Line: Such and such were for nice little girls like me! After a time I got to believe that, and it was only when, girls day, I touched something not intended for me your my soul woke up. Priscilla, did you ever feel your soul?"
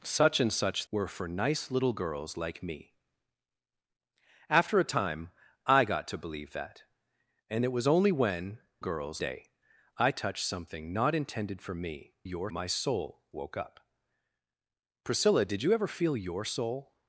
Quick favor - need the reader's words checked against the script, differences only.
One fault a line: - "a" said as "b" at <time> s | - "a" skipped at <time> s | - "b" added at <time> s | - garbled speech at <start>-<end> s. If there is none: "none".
none